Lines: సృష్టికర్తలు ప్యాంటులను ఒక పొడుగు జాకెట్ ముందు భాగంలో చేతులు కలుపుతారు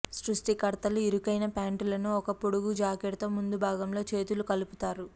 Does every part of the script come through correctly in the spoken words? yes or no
no